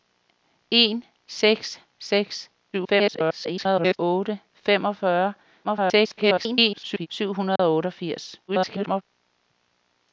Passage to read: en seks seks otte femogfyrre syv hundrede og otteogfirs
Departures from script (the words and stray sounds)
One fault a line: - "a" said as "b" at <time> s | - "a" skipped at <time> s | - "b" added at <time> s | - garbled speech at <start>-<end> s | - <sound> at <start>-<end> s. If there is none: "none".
- garbled speech at 2.7-4.0 s
- garbled speech at 5.6-7.1 s
- dropout at 7.6-7.6 s
- garbled speech at 8.5-9.0 s